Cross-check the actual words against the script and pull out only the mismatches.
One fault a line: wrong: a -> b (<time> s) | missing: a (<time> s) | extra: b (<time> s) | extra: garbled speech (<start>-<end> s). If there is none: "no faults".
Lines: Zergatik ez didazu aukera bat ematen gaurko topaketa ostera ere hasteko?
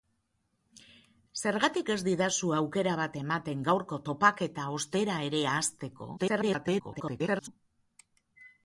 extra: garbled speech (6.2-7.5 s)